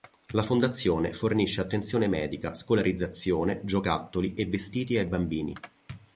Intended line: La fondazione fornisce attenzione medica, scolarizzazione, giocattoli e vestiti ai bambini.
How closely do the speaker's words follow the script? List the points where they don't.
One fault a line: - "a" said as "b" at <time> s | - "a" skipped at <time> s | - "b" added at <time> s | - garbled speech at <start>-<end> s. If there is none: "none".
none